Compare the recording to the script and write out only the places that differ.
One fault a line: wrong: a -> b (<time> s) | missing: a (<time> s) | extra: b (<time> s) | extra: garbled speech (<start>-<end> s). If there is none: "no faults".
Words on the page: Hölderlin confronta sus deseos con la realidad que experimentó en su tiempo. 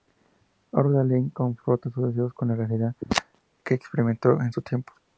no faults